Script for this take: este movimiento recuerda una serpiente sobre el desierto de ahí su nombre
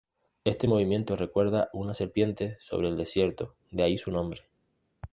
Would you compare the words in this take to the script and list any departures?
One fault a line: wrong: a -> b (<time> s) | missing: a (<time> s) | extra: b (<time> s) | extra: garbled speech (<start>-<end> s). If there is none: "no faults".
no faults